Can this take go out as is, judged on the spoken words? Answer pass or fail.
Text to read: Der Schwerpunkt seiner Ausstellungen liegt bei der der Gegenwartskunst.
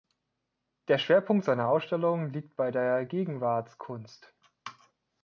fail